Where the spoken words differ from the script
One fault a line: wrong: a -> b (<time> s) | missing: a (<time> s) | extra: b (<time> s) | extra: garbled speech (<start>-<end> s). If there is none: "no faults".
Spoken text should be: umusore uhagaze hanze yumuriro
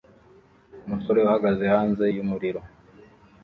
no faults